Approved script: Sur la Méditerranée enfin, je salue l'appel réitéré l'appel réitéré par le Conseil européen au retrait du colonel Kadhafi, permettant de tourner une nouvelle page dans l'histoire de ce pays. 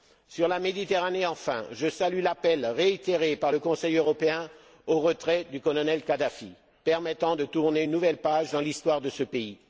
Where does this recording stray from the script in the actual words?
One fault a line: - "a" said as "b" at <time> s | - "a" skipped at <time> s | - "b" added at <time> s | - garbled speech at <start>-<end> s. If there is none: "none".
- "l'appel réitéré" skipped at 3.4 s